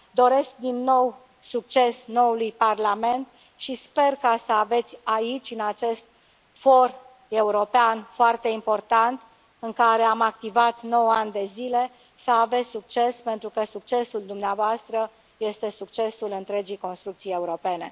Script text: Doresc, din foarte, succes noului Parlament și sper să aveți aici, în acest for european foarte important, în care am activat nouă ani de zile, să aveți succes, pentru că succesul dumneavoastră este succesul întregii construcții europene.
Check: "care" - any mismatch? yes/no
no